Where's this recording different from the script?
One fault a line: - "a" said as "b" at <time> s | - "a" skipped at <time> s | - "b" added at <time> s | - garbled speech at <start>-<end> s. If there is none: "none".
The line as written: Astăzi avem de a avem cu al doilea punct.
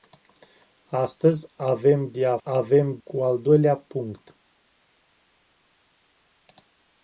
none